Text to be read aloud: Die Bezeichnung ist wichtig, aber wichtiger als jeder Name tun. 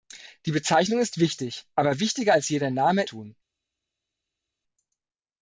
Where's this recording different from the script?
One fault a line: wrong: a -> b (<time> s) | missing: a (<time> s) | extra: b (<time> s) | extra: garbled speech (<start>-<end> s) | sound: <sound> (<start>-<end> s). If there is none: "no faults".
no faults